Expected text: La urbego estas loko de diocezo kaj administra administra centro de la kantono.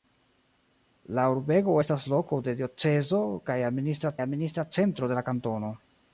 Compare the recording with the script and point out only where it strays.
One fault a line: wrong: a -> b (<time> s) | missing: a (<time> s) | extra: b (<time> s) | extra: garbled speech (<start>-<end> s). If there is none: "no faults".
no faults